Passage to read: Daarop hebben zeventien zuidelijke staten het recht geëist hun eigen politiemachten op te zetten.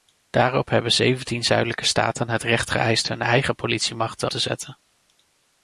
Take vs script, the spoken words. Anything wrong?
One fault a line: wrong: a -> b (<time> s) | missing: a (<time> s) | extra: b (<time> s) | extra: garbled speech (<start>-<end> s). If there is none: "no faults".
missing: op (4.3 s)